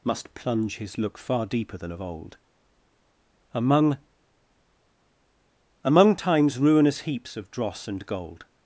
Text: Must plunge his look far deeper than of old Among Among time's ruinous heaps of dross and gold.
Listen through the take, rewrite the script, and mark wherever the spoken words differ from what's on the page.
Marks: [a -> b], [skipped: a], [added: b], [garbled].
Must plunge his look far deeper than of old Among Among time's ruinous heaps of dross and gold.